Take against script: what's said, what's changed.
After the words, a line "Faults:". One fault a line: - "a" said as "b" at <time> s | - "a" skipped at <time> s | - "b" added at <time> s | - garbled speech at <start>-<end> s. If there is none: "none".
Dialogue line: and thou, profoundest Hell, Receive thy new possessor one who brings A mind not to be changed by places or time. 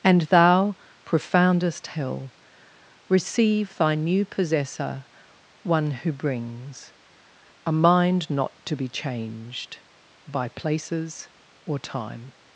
and thou, profoundest Hell, Receive thy new possessor one who brings A mind not to be changed by places or time.
Faults:
none